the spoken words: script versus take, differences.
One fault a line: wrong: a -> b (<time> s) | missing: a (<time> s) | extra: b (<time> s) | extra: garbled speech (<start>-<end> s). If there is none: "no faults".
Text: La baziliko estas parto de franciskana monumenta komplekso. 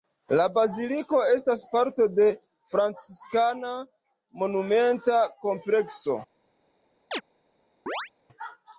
no faults